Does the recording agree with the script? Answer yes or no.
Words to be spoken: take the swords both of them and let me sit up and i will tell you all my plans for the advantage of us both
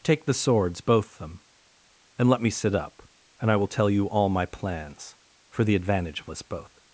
no